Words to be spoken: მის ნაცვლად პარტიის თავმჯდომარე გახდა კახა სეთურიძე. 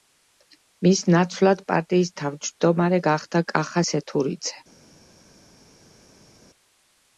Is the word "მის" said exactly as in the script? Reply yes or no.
yes